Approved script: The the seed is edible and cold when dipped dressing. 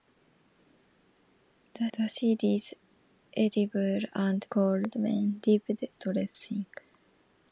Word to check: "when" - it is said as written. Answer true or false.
true